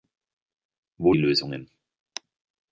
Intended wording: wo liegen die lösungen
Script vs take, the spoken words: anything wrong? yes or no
yes